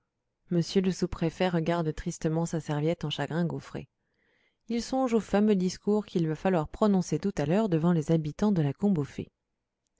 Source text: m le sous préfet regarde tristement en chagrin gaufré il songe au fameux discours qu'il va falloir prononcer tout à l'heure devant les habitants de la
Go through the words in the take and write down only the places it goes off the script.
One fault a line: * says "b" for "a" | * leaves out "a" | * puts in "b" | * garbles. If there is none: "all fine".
* puts in "sa serviette"